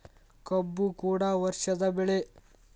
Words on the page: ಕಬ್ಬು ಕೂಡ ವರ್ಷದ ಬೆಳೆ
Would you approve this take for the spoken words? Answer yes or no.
yes